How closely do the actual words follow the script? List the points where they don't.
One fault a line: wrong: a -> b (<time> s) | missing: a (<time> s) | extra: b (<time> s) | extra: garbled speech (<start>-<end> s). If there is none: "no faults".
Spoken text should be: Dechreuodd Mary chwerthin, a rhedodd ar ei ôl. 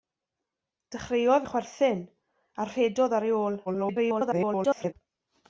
missing: Mary (1.4 s)
extra: garbled speech (3.7-4.9 s)